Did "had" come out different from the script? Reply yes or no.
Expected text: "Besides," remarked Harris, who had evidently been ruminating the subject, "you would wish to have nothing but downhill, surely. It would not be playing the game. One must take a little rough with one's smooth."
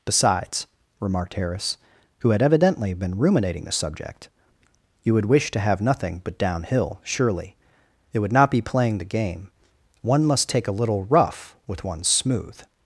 no